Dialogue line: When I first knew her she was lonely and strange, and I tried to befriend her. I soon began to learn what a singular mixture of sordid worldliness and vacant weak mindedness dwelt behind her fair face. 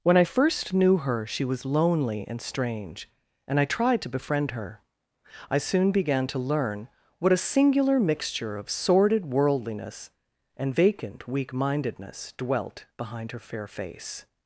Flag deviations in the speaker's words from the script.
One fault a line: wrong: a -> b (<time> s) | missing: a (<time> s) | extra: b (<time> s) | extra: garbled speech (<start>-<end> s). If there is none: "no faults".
no faults